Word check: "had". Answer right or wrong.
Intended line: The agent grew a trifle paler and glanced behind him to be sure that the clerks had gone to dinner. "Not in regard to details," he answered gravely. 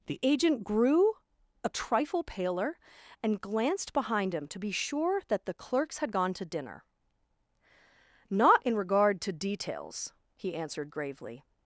right